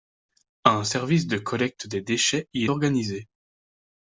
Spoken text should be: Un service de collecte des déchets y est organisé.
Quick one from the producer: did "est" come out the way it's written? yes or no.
no